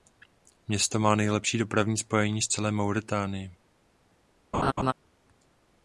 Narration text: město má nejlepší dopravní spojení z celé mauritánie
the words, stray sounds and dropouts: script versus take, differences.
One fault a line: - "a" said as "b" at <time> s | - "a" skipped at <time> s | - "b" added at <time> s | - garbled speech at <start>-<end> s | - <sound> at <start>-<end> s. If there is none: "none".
- laugh at 4.5-4.9 s